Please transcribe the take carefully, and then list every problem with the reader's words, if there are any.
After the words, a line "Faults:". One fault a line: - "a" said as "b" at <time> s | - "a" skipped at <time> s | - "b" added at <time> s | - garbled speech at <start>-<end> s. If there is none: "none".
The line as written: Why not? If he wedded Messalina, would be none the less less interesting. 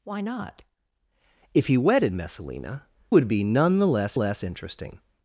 Why not? If he wedded Messalina, would be none the less less interesting.
Faults:
none